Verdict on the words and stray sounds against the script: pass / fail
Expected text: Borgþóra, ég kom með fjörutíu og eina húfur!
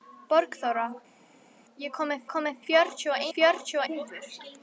fail